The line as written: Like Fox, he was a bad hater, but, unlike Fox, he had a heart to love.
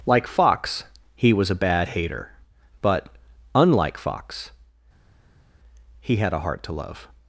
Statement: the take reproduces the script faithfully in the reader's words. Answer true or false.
true